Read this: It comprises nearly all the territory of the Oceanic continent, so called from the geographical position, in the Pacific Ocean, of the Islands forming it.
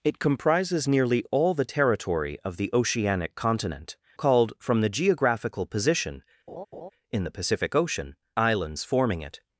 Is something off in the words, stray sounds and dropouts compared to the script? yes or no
yes